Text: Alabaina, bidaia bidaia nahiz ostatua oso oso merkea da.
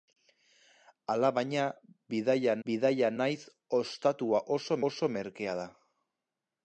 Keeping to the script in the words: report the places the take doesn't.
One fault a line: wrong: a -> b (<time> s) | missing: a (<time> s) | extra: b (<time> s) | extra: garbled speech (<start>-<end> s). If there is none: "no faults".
no faults